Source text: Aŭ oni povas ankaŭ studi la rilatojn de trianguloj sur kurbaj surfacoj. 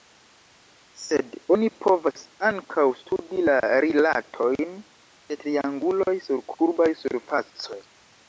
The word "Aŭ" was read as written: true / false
false